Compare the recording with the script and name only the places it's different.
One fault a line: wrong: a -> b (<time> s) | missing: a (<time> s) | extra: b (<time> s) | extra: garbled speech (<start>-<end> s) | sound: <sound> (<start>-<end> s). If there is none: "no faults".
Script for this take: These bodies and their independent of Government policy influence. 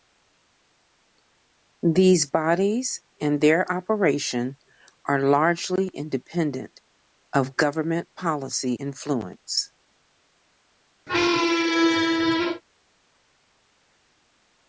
extra: operation are largely (3.7 s)
sound: squeak (11.1-12.6 s)